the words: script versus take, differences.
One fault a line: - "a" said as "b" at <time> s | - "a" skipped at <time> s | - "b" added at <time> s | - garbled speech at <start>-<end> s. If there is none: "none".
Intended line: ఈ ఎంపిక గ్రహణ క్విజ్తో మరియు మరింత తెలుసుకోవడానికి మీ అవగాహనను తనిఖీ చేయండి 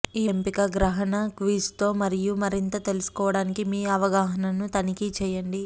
none